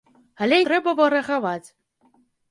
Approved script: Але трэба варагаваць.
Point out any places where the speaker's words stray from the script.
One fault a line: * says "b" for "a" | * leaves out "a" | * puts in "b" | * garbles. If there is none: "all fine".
all fine